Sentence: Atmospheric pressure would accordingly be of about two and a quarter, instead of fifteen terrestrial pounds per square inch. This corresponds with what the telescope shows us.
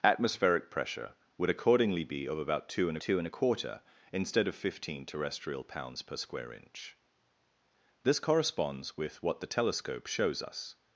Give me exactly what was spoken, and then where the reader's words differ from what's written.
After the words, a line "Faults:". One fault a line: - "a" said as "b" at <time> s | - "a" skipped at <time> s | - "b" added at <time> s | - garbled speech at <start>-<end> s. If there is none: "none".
Atmospheric pressure would accordingly be of about two and two and a quarter, instead of fifteen terrestrial pounds per square inch. This corresponds with what the telescope shows us.
Faults:
- "two and" added at 3.0 s